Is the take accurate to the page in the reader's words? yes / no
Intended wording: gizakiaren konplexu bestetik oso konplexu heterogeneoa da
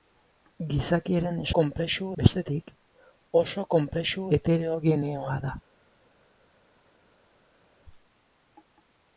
yes